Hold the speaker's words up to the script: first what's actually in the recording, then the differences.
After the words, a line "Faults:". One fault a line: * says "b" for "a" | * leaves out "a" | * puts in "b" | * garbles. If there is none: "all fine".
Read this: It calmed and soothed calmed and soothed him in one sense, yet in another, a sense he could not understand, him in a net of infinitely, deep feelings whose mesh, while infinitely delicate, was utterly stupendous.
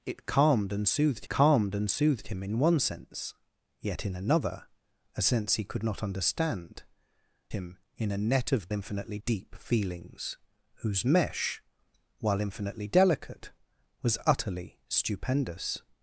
It calmed and soothed calmed and soothed him in one sense, yet in another, a sense he could not understand, him in a net of infinitely, deep feelings whose mesh, while infinitely delicate, was utterly stupendous.
Faults:
all fine